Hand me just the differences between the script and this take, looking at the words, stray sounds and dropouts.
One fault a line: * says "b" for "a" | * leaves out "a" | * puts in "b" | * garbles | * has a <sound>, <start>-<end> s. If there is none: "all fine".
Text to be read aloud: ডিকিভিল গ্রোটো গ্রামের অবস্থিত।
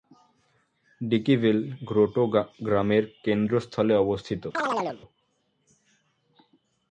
* puts in "কেন্দ্রস্থলে"
* has a chirp, 4.5-5.0 s